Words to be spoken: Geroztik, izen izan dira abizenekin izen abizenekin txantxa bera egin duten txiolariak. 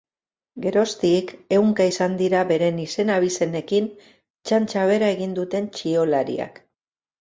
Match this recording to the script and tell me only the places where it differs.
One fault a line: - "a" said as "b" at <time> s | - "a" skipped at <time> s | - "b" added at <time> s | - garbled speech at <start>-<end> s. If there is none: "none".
- "izen" said as "ehunka" at 1.6 s
- "abizenekin" said as "beren" at 2.5 s